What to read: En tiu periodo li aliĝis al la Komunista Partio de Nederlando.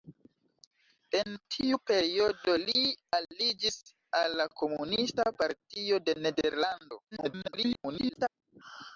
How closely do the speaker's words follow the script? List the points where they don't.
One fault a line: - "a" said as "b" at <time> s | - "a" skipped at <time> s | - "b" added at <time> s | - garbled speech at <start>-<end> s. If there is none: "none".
- garbled speech at 7.1-8.3 s